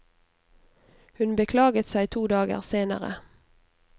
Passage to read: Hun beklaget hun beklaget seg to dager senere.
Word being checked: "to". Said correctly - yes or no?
yes